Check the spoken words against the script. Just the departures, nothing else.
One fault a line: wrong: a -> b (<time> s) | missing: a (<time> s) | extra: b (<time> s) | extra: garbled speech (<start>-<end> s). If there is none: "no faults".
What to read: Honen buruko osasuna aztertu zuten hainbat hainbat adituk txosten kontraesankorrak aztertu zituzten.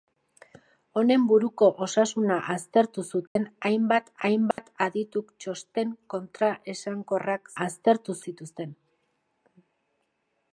no faults